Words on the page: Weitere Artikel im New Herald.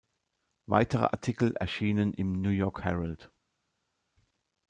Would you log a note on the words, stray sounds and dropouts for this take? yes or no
yes